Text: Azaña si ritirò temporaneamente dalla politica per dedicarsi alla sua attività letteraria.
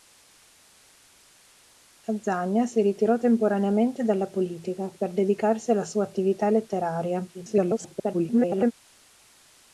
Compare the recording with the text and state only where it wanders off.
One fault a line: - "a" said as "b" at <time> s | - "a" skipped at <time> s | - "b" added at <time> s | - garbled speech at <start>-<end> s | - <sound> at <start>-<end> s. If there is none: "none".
- garbled speech at 7.3-8.7 s